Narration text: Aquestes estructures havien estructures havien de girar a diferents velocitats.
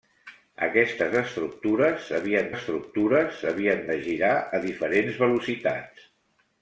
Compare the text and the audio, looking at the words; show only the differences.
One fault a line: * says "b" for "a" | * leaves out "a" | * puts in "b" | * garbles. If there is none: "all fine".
all fine